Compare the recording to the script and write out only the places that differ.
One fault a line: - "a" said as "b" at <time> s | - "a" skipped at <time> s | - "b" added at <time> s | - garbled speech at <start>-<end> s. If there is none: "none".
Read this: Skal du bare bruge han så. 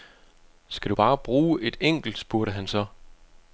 - "et enkelt spurgte" added at 1.6 s